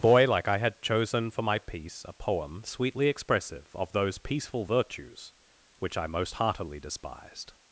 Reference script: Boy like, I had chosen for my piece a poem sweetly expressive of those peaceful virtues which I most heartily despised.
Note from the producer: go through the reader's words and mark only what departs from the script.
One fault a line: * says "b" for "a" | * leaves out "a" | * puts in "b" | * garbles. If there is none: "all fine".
all fine